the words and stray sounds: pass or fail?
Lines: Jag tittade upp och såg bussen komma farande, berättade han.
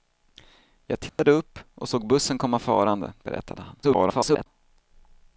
fail